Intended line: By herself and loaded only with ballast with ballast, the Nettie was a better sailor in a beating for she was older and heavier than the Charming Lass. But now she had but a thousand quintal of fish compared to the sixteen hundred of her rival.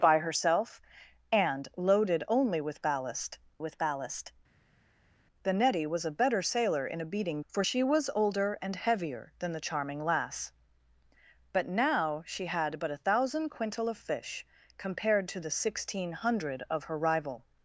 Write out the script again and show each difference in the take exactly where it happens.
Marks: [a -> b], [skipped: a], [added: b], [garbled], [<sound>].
By herself and loaded only with ballast with ballast, the Nettie was a better sailor in a beating for she was older and heavier than the Charming Lass. But now she had but a thousand quintal of fish compared to the sixteen hundred of her rival.